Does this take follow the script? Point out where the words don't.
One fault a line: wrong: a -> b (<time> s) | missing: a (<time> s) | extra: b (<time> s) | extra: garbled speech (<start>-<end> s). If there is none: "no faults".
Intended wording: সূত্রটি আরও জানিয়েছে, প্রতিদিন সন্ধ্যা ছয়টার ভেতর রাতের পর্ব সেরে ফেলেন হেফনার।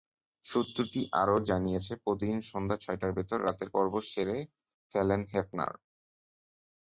no faults